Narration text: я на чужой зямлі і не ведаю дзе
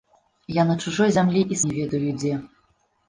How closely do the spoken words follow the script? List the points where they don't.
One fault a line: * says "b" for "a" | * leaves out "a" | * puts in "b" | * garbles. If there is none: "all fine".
all fine